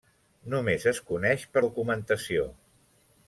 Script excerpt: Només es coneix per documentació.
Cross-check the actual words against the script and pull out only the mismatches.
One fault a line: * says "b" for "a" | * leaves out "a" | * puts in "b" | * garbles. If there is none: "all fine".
all fine